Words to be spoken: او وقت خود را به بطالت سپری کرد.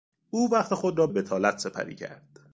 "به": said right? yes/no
no